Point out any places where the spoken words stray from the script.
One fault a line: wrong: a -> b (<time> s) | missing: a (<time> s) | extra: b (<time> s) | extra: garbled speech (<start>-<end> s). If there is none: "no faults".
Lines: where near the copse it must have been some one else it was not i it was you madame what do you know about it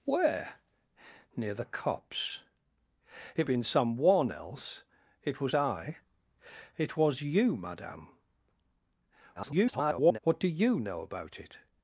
missing: must have (3.5 s)
missing: not (5.6 s)
extra: garbled speech (9.4-10.2 s)